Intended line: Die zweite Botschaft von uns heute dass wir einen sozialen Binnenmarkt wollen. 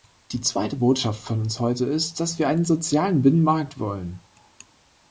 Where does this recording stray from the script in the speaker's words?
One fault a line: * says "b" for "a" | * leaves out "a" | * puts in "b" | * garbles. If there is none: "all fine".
* puts in "ist"